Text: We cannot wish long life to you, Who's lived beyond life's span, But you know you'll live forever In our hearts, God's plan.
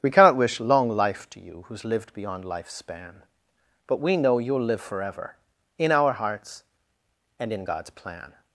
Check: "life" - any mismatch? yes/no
no